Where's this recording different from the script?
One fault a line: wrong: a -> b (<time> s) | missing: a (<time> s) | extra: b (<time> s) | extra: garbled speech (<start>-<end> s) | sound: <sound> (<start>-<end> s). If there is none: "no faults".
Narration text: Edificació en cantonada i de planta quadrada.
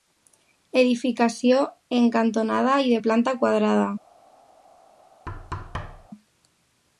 sound: thud (5.3-6.1 s)